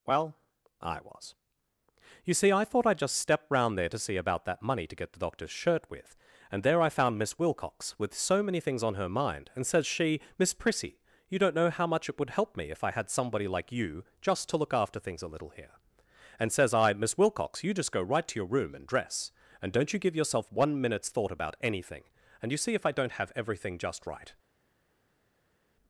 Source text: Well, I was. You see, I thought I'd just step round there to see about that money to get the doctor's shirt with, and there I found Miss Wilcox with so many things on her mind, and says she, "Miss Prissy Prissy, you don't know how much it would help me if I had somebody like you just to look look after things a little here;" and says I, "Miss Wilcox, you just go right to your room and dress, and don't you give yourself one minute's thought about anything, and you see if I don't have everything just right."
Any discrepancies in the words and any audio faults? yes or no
yes